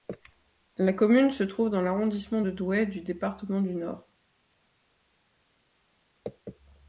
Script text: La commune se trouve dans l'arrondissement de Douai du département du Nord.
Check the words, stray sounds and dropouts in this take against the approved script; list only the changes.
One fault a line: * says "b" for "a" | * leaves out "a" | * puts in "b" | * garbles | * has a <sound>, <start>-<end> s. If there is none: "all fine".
all fine